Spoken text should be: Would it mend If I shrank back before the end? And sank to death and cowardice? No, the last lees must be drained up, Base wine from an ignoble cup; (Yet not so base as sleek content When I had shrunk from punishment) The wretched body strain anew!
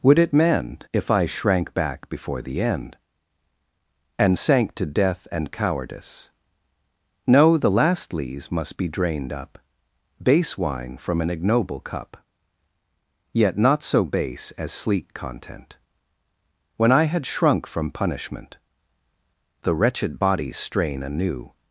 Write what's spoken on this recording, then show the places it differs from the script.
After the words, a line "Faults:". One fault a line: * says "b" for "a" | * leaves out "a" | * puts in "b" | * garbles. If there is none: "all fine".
Would it mend If I shrank back before the end? And sank to death and cowardice? No, the last lees must be drained up, Base wine from an ignoble cup; (Yet not so base as sleek content When I had shrunk from punishment) The wretched body strain anew!
Faults:
all fine